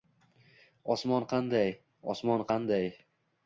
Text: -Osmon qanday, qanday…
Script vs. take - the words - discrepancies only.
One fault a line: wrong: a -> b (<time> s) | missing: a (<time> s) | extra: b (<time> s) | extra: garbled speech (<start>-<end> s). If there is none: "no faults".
extra: osmon (2.2 s)